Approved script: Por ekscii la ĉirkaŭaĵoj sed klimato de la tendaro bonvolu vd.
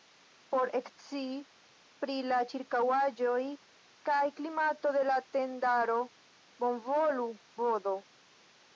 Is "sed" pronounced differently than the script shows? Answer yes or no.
yes